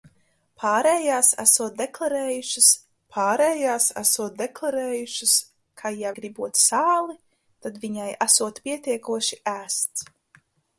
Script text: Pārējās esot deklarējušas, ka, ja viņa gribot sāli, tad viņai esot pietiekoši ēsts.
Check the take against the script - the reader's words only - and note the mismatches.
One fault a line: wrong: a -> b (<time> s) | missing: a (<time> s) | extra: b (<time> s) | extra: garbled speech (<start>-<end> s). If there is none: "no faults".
extra: pārējās esot deklarējušas (3.1 s)
missing: viņa (6.1 s)